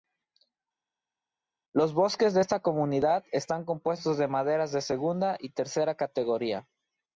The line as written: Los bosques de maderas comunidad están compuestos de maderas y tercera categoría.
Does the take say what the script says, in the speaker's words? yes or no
no